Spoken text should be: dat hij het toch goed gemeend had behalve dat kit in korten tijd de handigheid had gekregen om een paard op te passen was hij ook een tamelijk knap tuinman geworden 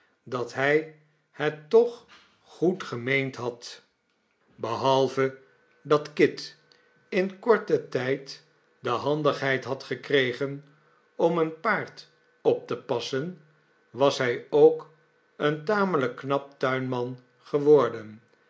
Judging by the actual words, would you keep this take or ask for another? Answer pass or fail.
pass